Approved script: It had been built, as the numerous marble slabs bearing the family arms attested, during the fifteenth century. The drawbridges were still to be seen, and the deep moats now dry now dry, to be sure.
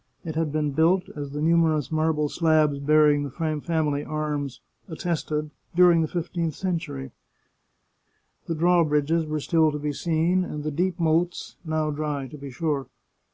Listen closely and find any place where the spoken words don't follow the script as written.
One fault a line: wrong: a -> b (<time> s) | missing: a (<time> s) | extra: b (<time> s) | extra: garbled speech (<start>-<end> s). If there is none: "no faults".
missing: now dry (12.3 s)